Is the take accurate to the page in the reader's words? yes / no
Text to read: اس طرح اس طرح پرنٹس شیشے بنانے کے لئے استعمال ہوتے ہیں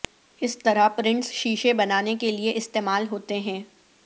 no